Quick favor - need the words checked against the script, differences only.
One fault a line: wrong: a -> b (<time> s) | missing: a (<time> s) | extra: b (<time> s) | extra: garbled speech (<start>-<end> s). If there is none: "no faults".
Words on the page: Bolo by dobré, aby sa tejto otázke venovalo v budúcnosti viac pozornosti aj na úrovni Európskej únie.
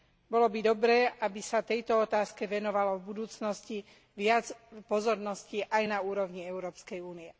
no faults